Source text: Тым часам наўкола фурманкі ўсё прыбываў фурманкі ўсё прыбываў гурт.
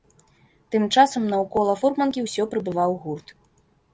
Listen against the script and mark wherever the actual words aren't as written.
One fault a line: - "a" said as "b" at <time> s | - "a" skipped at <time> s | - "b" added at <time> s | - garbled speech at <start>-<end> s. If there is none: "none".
- "фурманкі ўсё прыбываў" skipped at 2.9 s